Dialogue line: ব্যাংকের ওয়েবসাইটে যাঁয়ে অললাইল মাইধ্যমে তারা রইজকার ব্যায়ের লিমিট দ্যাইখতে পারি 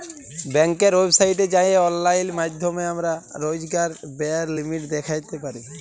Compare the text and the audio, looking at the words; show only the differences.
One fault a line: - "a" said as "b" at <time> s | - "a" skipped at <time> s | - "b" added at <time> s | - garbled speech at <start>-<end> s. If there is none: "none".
- "তারা" said as "আমরা" at 2.9 s